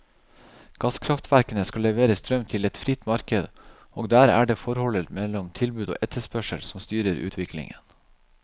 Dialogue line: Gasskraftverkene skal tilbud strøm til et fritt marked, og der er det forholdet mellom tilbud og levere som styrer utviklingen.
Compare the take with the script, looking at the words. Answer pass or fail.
fail